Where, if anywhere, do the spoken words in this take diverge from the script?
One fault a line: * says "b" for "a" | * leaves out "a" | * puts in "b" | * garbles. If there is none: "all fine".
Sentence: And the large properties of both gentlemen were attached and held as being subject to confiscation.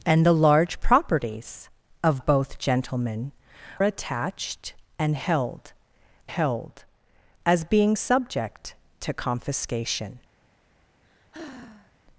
* leaves out "were"
* puts in "held"